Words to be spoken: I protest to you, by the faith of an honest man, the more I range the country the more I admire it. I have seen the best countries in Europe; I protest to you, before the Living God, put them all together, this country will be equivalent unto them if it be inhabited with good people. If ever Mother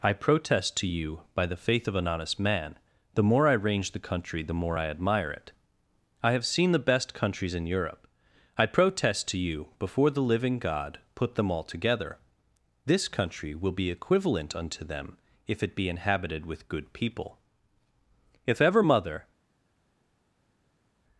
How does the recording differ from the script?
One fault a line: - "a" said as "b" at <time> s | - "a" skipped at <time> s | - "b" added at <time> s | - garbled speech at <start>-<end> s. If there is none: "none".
none